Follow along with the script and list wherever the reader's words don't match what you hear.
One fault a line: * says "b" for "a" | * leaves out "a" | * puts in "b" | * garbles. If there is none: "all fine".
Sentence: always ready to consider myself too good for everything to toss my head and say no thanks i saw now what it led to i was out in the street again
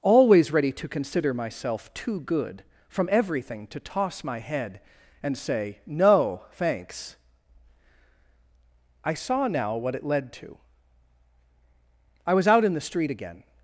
* says "from" for "for"